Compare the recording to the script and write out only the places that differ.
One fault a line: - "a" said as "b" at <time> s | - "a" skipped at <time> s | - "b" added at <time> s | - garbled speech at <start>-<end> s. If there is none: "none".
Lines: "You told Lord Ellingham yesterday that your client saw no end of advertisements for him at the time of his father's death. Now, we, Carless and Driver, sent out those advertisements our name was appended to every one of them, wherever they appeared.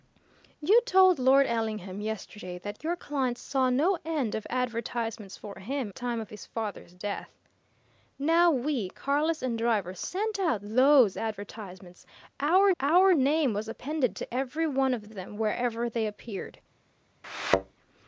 - "at the" skipped at 5.9 s
- "our" added at 12.8 s
- "of" added at 15.0 s